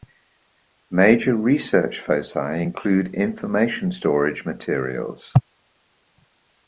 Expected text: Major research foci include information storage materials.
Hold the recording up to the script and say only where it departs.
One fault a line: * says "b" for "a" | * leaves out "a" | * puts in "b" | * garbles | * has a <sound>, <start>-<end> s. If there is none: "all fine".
all fine